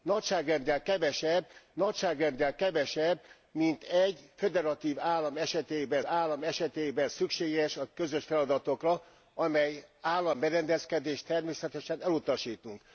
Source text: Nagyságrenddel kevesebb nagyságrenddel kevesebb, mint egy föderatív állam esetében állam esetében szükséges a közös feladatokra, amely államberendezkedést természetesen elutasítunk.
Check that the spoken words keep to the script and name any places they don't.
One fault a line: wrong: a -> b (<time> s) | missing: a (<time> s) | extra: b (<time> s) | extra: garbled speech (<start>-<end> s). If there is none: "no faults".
no faults